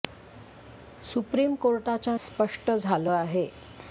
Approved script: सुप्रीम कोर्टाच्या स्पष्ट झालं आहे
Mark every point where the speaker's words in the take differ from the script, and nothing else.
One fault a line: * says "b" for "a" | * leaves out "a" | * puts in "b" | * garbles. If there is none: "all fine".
all fine